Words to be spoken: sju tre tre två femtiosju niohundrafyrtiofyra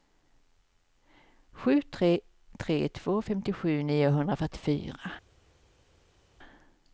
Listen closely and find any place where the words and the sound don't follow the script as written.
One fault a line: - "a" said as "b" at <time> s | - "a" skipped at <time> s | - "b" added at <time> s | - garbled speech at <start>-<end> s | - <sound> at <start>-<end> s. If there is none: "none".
none